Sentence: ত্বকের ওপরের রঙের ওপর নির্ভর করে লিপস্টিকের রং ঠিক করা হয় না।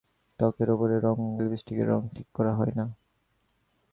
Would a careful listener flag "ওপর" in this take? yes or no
yes